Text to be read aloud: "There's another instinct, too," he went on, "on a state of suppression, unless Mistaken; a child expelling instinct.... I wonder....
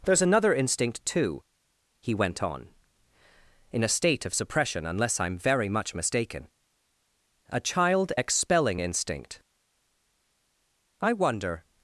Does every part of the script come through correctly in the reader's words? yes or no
no